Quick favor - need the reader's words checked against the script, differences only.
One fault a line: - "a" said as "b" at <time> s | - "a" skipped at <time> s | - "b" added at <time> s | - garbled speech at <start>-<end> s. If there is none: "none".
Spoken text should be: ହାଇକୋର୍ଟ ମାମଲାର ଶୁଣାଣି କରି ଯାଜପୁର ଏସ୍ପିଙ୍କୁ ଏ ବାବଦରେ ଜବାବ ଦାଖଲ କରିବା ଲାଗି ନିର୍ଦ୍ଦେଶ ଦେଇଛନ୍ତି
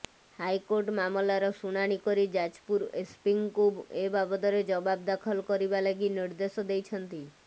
none